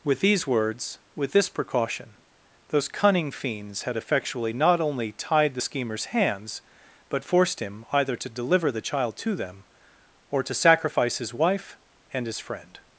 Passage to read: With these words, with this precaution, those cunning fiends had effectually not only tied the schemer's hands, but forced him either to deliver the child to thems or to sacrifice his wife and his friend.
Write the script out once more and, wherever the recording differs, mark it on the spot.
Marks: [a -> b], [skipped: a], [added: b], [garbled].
With these words, with this precaution, those cunning fiends had effectually not only tied the schemer's hands, but forced him either to deliver the child to [thems -> them] or to sacrifice his wife and his friend.